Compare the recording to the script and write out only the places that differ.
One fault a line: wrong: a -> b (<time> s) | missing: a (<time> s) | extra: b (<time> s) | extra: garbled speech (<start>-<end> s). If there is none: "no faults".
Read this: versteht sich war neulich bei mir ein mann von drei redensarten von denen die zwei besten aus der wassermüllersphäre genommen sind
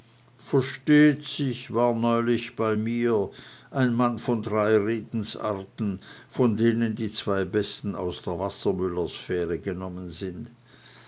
no faults